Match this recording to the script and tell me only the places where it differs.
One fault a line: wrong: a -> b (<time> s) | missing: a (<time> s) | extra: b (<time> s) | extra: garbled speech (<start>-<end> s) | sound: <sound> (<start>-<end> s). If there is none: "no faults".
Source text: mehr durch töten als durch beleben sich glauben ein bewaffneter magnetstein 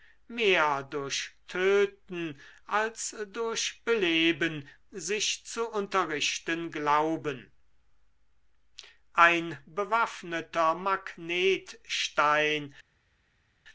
extra: zu unterrichten (5.5 s)